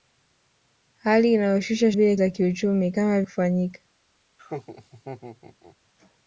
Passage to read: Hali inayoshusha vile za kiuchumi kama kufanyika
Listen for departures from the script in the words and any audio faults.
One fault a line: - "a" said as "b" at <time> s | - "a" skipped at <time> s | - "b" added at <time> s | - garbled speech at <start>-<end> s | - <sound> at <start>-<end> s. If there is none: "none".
- laugh at 4.4-5.8 s